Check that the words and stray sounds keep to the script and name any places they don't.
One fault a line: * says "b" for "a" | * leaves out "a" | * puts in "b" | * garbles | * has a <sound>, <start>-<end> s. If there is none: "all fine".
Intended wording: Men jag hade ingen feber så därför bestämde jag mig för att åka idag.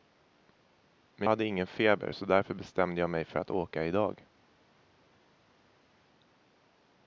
* leaves out "jag"